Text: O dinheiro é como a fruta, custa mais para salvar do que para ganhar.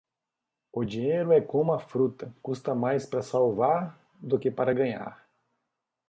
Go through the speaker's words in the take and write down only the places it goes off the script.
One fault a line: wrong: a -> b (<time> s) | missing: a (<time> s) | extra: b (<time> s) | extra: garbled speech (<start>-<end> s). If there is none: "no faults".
no faults